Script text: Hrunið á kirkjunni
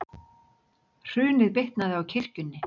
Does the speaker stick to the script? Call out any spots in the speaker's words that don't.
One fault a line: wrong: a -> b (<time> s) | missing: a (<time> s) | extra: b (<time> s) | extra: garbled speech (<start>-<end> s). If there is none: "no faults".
extra: bitnaði (1.6 s)